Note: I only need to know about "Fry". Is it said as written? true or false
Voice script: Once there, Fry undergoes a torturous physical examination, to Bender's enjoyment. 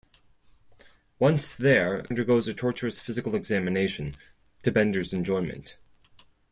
false